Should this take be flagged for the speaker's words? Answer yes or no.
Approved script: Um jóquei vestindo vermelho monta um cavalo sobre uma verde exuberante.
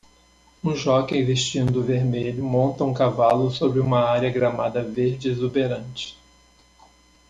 yes